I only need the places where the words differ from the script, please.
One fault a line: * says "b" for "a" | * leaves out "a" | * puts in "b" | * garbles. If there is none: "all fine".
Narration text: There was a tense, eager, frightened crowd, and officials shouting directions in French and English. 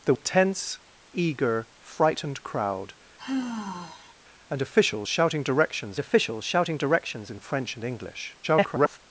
* leaves out "was"
* puts in "officials shouting directions"
* garbles